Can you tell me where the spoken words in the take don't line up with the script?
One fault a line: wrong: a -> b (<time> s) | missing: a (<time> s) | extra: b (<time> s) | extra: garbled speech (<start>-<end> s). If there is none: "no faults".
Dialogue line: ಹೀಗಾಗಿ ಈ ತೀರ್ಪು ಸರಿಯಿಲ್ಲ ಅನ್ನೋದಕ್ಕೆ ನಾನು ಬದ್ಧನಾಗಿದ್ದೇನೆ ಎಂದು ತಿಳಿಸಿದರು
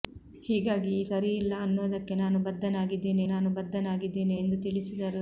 missing: ತೀರ್ಪು (1.0 s)
extra: ನಾನು ಬದ್ಧನಾಗಿದ್ದೇನೆ (3.3 s)